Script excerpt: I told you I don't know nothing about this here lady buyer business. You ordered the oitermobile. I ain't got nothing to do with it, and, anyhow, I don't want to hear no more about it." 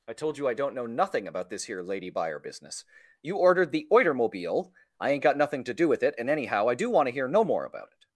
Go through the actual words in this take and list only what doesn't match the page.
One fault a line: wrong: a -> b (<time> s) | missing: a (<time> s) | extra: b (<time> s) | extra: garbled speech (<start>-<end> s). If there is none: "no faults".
wrong: don't -> do (6.8 s)